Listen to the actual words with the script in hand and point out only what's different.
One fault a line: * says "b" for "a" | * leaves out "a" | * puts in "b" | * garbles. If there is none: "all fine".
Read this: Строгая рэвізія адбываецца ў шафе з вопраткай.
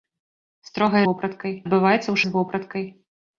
* says "вопраткай" for "рэвізія"
* leaves out "шафе"